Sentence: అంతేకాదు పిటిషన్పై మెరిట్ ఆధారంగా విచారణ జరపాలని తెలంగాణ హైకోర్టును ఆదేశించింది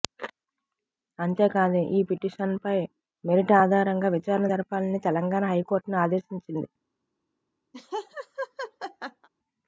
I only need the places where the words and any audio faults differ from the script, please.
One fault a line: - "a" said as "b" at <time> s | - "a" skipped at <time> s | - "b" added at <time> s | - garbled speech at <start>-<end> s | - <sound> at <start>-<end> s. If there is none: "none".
- "ఈ" added at 1.9 s
- laugh at 7.7-9.3 s